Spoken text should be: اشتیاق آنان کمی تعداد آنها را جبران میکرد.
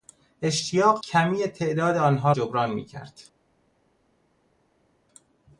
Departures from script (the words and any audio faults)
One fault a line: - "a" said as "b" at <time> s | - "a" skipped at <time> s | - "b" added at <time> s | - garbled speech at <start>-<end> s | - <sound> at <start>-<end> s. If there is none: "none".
- "آنان" skipped at 1.0 s
- "را" skipped at 2.3 s